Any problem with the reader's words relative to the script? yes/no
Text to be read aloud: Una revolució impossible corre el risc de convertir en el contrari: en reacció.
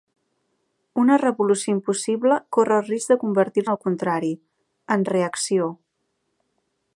no